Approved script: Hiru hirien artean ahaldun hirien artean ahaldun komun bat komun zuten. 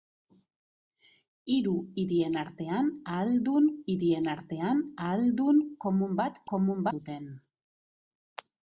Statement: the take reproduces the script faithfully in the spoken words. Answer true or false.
true